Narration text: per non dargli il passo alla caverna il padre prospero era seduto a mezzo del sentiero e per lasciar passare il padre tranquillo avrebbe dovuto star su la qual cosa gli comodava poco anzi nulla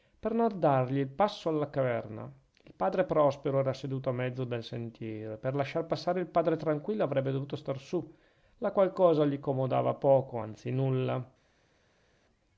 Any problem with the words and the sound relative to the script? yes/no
no